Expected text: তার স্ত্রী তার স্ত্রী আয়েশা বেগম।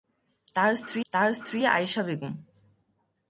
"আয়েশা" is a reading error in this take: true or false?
false